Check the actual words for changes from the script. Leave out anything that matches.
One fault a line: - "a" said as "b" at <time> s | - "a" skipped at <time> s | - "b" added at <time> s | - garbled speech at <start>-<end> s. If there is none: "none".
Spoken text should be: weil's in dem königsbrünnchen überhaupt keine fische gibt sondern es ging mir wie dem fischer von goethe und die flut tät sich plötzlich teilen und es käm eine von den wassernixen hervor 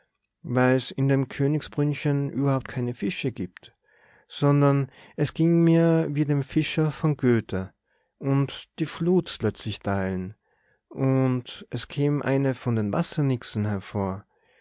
- "tät sich" skipped at 9.4 s